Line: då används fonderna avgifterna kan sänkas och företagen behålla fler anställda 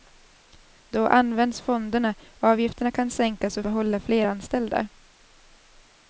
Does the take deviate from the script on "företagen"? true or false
true